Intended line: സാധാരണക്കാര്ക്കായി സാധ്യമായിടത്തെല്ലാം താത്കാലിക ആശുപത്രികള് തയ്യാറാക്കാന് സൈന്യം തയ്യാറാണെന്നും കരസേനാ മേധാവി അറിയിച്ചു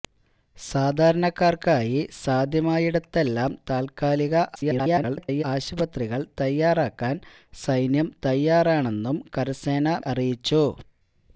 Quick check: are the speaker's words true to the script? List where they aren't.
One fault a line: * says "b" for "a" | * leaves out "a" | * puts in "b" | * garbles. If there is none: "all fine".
* garbles
* leaves out "മേധാവി"